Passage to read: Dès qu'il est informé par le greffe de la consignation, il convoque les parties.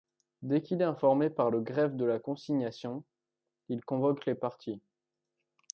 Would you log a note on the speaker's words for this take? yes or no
no